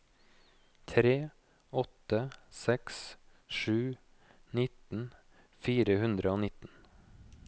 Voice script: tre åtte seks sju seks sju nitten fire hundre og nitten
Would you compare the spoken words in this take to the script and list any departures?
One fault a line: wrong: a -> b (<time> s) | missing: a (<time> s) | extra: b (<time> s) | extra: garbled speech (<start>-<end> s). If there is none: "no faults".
missing: seks sju (3.8 s)